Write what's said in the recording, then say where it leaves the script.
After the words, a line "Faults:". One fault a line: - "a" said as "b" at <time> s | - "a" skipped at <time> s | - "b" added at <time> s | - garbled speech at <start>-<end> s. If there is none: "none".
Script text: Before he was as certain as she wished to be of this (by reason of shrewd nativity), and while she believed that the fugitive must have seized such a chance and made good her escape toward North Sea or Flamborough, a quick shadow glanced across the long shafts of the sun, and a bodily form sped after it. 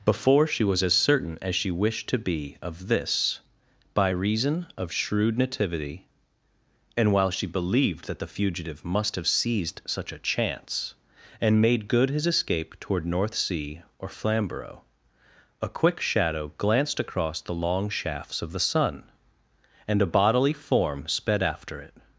Before she was as certain as she wished to be of this (by reason of shrewd nativity), and while she believed that the fugitive must have seized such a chance and made good his escape toward North Sea or Flamborough, a quick shadow glanced across the long shafts of the sun, and a bodily form sped after it.
Faults:
- "he" said as "she" at 0.5 s
- "her" said as "his" at 12.1 s